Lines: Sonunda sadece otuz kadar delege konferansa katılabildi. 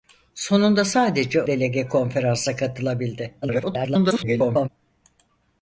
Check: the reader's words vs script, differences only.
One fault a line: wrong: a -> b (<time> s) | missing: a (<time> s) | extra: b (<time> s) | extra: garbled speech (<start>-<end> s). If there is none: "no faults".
missing: otuz kadar (1.4 s)
extra: garbled speech (3.4-4.7 s)